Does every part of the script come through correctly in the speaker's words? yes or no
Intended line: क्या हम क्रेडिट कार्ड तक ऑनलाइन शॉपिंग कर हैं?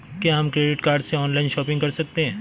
no